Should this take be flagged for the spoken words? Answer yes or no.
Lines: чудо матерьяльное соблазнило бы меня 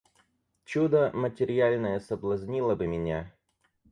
no